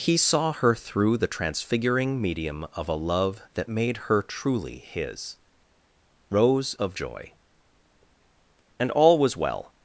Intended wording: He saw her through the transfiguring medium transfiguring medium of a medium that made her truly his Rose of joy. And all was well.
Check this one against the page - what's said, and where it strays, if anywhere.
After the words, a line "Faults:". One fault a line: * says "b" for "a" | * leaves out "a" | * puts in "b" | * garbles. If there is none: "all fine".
He saw her through the transfiguring medium of a love that made her truly his Rose of joy. And all was well.
Faults:
* leaves out "transfiguring medium"
* says "love" for "medium"